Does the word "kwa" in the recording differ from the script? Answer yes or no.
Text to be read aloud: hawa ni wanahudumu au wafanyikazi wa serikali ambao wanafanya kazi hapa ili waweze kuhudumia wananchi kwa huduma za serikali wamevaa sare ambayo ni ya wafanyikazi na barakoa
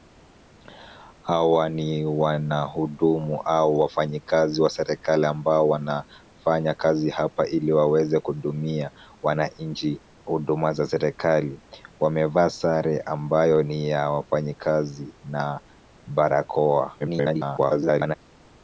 yes